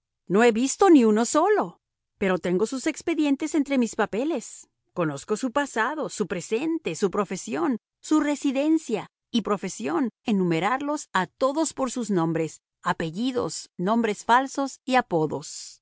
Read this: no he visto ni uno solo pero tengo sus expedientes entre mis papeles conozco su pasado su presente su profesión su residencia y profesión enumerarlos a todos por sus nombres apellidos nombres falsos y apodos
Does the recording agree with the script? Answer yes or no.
yes